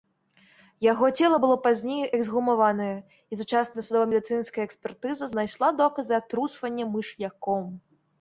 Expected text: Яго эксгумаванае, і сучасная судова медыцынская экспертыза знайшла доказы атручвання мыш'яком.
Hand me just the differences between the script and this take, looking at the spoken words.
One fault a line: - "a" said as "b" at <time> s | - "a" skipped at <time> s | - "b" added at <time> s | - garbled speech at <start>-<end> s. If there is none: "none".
- "цела было пазней" added at 1.2 s